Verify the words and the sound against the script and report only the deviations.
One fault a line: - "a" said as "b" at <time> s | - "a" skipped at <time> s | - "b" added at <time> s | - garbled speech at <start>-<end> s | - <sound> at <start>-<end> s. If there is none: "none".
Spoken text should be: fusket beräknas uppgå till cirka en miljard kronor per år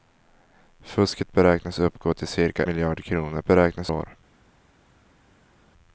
- "en" skipped at 2.6 s
- "per" said as "beräknas" at 3.4 s